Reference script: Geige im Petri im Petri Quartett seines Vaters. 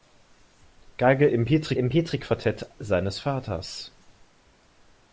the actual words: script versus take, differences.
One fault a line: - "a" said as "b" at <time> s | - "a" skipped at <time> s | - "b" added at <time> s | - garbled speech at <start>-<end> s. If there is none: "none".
none